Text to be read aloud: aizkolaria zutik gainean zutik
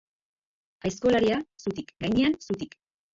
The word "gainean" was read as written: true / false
true